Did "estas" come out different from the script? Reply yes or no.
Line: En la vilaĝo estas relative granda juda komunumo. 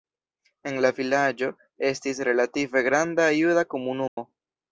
yes